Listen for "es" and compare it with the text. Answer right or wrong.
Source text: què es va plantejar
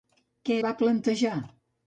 wrong